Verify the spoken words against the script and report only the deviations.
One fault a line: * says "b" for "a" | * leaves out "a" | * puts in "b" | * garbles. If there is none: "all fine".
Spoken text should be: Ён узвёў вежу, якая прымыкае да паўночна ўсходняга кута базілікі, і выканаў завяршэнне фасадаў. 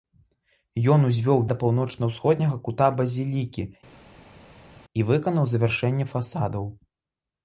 * leaves out "вежу якая прымыкае"